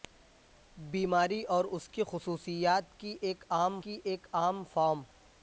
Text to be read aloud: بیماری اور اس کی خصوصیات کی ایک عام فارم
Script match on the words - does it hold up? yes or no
no